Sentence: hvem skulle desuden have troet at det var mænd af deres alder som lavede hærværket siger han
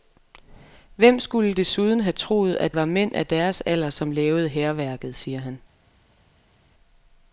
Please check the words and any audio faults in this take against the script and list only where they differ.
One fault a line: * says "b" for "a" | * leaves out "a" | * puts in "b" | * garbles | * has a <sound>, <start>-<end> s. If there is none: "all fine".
* leaves out "det"